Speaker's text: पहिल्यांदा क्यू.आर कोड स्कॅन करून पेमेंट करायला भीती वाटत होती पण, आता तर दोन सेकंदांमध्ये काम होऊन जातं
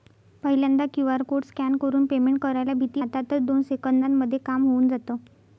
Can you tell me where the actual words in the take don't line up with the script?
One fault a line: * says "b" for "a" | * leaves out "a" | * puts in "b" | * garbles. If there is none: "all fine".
* leaves out "वाटत होती पण"